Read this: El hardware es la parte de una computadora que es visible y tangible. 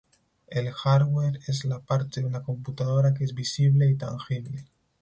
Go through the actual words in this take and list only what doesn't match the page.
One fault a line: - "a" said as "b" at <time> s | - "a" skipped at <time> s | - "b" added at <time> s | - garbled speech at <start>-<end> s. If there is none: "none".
none